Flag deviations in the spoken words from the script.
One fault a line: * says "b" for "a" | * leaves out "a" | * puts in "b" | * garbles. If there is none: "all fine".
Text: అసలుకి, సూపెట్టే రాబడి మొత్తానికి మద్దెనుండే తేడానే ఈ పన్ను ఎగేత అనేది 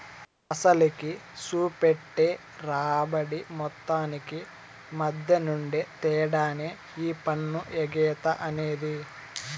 all fine